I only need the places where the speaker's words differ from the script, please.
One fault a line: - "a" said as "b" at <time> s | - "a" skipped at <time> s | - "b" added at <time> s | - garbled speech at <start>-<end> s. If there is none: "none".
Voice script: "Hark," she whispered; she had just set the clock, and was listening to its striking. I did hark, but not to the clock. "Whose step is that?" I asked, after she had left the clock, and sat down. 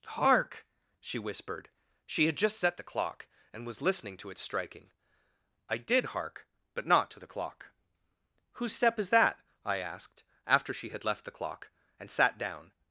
none